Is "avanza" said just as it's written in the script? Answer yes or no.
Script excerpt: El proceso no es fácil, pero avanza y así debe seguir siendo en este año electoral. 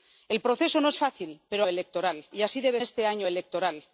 no